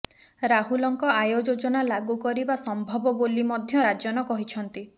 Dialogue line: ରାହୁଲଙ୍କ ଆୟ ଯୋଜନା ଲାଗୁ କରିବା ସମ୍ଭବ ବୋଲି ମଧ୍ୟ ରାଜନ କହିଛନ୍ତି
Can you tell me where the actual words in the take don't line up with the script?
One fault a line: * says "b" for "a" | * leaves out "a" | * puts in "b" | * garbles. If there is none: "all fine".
all fine